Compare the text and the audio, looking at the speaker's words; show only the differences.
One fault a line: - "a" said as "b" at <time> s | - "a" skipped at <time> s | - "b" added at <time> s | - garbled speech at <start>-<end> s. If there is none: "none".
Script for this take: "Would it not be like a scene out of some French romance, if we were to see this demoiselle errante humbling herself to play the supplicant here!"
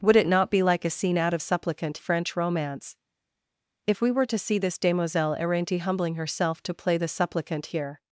- "some" said as "supplicant" at 1.4 s